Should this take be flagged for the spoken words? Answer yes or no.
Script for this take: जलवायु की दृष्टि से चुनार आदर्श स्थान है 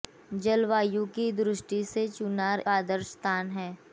no